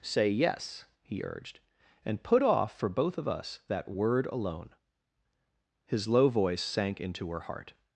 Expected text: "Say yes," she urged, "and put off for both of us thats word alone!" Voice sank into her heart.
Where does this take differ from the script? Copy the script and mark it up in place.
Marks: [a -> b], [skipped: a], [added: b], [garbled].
"Say yes," [she -> he] urged, "and put off for both of us [thats -> that] word alone!" [added: His low] Voice sank into her heart.